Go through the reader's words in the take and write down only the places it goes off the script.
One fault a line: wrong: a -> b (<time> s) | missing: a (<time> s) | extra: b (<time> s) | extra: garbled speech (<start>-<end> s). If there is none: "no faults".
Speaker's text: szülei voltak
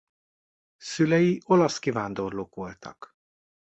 extra: olasz kivándorlók (1.4 s)